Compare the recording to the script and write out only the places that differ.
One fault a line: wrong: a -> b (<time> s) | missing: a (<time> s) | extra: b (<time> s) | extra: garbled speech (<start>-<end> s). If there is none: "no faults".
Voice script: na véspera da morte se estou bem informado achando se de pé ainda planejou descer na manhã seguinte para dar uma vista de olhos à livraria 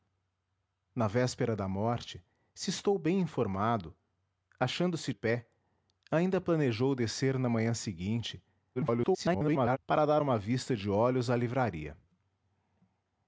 missing: de (5.1 s)
extra: garbled speech (8.8-9.8 s)